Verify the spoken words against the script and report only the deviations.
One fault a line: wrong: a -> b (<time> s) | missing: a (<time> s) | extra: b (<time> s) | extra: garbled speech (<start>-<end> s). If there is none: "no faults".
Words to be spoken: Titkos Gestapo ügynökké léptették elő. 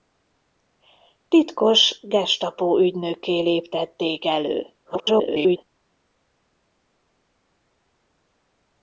extra: garbled speech (4.8-5.6 s)